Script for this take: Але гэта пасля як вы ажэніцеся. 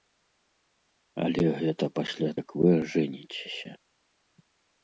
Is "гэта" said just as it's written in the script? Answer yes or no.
yes